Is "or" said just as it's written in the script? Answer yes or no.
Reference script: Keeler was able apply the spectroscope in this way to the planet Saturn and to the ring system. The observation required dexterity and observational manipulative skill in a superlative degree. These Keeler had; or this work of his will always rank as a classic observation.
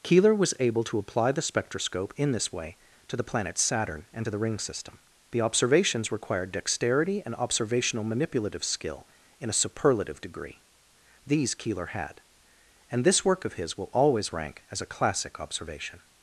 no